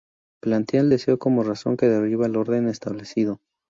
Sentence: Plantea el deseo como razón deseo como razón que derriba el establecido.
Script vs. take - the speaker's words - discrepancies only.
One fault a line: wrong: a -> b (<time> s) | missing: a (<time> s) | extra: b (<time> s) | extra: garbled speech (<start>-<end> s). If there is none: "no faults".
missing: deseo como razón (1.8 s)
extra: orden (2.3 s)